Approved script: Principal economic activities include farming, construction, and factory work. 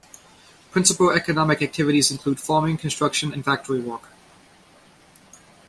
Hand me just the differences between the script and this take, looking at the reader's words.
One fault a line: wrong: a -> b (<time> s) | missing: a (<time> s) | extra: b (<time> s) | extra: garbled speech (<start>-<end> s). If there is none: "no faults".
no faults